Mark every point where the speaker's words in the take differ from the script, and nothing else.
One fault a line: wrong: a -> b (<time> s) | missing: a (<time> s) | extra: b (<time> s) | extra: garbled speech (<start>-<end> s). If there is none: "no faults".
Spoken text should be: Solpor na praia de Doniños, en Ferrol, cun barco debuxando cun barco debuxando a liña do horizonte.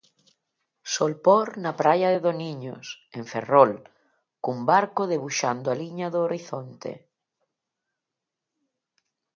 missing: cun barco debuxando (5.7 s)